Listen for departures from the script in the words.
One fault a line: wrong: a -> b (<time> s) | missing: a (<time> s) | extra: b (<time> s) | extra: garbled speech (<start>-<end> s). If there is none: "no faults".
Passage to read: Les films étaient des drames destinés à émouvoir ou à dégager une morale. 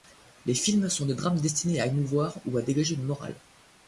wrong: étaient -> sont (0.9 s)